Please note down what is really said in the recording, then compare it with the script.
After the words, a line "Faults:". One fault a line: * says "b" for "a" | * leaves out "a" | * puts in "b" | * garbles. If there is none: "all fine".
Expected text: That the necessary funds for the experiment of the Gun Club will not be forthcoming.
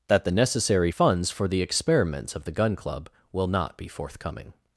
That the necessary funds for the experiments of the Gun Club will not be forthcoming.
Faults:
* says "experiments" for "experiment"